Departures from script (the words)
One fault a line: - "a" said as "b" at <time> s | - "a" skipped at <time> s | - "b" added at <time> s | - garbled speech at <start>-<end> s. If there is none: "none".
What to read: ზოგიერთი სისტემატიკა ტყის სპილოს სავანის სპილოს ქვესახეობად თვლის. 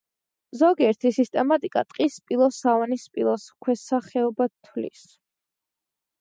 none